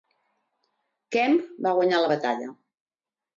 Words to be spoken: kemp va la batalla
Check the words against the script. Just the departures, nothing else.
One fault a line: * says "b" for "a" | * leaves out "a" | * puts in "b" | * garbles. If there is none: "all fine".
* puts in "guanyar"